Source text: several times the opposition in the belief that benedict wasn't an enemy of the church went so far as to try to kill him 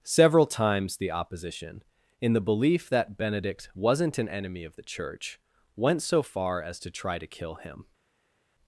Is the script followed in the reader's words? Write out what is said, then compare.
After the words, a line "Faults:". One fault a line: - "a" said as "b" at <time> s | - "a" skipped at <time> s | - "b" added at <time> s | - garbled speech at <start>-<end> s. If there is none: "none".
several times the opposition in the belief that benedict wasn't an enemy of the church went so far as to try to kill him
Faults:
none